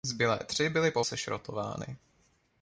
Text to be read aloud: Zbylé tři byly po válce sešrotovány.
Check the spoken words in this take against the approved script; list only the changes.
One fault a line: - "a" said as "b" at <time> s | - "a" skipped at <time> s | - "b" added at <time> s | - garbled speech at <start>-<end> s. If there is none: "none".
- "válce" skipped at 1.0 s